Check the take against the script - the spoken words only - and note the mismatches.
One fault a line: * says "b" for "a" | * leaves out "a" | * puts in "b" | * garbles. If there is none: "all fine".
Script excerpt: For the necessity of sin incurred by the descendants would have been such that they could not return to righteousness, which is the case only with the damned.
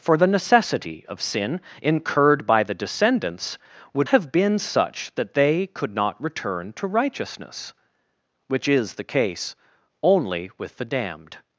all fine